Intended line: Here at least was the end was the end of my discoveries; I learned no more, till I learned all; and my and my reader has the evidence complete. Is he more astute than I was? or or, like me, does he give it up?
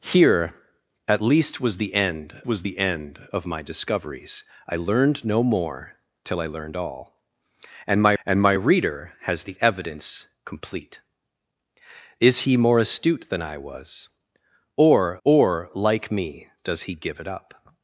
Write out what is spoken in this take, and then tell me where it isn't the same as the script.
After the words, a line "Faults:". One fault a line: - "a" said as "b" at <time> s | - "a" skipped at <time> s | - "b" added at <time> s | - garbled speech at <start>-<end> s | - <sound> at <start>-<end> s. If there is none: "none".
Here at least was the end was the end of my discoveries; I learned no more, till I learned all; and my and my reader has the evidence complete. Is he more astute than I was? or or, like me, does he give it up?
Faults:
none